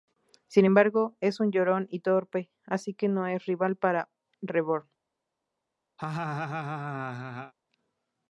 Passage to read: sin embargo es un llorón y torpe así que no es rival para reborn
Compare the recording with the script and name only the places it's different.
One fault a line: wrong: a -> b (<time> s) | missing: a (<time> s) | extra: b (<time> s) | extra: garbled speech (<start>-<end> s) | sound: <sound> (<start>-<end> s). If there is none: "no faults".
sound: laugh (6.0-7.5 s)